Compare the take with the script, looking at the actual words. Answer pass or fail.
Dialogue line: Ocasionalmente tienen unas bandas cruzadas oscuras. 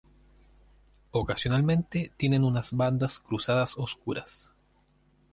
pass